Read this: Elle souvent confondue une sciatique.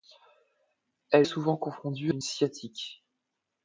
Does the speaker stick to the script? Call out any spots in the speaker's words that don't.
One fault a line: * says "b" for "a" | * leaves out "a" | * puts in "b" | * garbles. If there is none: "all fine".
all fine